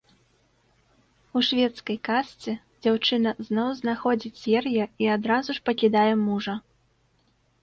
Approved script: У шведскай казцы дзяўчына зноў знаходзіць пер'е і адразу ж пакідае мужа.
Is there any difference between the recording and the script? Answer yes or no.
no